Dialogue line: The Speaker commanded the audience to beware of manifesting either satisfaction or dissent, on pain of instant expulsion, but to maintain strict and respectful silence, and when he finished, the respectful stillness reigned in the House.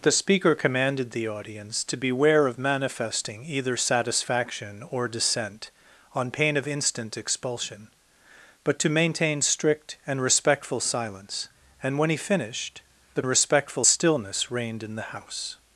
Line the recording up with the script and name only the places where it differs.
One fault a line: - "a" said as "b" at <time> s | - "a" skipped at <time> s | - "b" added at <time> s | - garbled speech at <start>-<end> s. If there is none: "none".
none